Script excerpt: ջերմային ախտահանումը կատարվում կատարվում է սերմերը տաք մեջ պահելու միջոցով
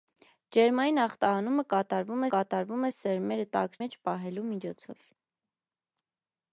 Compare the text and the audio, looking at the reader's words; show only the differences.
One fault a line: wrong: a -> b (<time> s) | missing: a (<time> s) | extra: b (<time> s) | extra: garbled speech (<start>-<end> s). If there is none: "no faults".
no faults